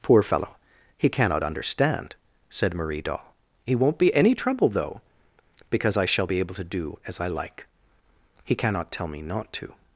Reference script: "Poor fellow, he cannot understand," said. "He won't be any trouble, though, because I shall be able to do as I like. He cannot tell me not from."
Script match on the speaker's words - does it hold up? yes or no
no